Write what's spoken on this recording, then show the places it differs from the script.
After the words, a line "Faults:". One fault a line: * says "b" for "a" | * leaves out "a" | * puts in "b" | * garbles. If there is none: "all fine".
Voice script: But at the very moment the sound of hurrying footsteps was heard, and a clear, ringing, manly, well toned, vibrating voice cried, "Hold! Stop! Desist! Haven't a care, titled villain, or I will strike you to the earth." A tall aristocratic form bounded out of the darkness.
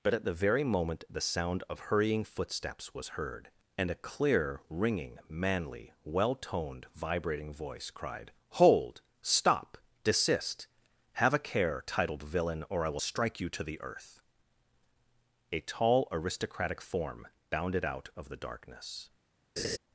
But at the very moment the sound of hurrying footsteps was heard, and a clear, ringing, manly, well toned, vibrating voice cried, "Hold! Stop! Desist! Have a care, titled villain, or I will strike you to the earth." A tall aristocratic form bounded out of the darkness.
Faults:
* says "Have" for "Haven't"